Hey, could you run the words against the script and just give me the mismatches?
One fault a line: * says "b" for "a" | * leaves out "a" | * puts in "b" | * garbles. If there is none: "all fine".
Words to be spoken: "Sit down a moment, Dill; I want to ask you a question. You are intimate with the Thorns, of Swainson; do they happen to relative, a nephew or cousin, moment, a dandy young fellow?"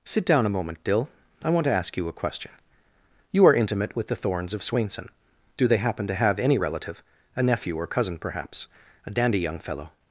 * puts in "have any"
* says "perhaps" for "moment"